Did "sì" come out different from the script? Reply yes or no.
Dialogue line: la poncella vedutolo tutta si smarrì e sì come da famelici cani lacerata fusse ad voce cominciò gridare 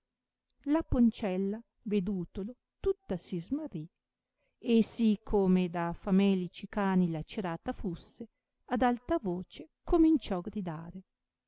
no